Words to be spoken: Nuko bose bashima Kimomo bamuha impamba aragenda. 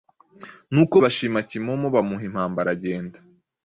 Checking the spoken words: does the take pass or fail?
fail